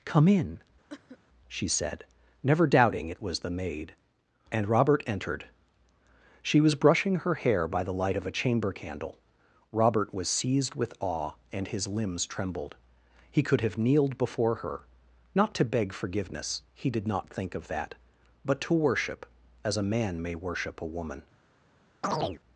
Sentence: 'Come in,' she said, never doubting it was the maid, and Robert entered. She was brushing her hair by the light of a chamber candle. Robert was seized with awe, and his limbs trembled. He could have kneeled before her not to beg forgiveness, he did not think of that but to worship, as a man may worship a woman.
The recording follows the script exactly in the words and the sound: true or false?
false